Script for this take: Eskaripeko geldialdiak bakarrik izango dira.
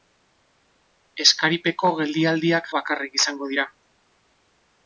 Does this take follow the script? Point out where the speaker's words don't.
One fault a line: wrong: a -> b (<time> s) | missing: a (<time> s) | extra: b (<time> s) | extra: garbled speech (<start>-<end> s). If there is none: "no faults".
no faults